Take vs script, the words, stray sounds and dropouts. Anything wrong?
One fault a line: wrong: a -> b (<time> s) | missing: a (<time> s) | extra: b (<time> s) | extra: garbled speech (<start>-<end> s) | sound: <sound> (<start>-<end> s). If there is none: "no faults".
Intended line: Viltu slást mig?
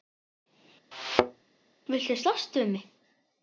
sound: thud (0.9-1.4 s)
extra: við (2.6 s)